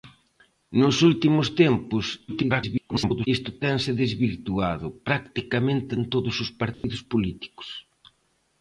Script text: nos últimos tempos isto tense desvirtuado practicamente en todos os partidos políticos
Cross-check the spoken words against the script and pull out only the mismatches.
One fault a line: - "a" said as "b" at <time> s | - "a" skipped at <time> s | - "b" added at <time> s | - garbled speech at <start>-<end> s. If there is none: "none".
- garbled speech at 2.3-3.3 s